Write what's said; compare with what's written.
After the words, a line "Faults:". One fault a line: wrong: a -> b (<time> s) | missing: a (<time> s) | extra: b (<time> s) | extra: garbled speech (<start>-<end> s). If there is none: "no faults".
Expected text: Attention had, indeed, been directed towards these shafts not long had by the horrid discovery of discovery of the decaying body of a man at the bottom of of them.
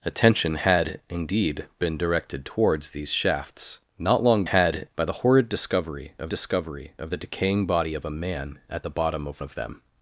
Attention had, indeed, been directed towards these shafts not long had by the horrid discovery of discovery of the decaying body of a man at the bottom of of them.
Faults:
no faults